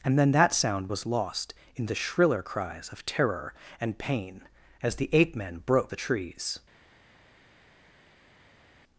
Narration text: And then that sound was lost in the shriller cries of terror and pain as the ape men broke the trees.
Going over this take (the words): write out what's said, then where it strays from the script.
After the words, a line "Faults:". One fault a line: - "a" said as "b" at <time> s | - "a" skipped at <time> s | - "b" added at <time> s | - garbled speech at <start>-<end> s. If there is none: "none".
And then that sound was lost in the shriller cries of terror and pain as the ape men broke the trees.
Faults:
none